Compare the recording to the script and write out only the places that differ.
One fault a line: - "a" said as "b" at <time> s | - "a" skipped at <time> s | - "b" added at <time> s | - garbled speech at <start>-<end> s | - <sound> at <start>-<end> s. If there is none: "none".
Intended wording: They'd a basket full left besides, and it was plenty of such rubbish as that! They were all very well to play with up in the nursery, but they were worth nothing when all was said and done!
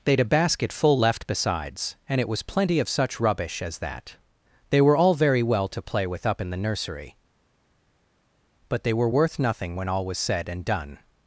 none